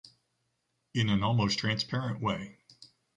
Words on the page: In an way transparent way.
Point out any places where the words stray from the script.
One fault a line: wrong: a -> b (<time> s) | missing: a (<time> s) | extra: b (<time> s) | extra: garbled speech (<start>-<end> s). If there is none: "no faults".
wrong: way -> almost (1.2 s)